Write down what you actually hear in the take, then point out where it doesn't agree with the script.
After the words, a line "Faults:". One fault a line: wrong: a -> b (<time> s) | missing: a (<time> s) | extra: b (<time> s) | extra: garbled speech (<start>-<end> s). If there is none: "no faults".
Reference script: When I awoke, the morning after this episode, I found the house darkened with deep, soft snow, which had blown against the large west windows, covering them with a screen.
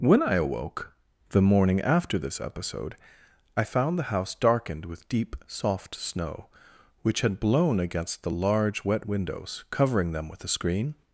When I awoke, the morning after this episode, I found the house darkened with deep, soft snow, which had blown against the large wet windows, covering them with a screen.
Faults:
wrong: west -> wet (8.8 s)